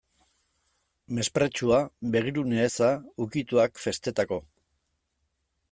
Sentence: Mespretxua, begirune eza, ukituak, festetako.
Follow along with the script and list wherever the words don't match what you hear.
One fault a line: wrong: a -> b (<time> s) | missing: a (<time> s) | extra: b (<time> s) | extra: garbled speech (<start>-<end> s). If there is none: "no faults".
no faults